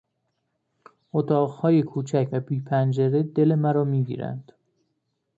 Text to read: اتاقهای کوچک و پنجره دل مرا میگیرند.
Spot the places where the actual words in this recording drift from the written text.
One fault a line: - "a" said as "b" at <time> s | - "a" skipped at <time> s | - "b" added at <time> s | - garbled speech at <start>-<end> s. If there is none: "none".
- "بی" added at 2.4 s